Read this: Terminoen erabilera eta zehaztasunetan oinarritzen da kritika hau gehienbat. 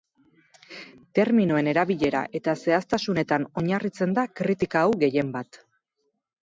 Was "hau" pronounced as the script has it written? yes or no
yes